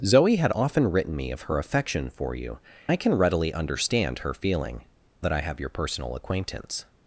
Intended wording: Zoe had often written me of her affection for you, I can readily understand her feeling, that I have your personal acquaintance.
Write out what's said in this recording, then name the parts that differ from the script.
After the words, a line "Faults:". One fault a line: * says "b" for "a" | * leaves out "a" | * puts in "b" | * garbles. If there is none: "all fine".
Zoe had often written me of her affection for you, I can readily understand her feeling, that I have your personal acquaintance.
Faults:
all fine